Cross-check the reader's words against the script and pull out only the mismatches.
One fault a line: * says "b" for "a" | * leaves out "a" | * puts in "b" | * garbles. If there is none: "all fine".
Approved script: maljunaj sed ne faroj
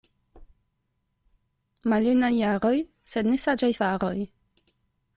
* puts in "jaroj"
* puts in "saĝaj"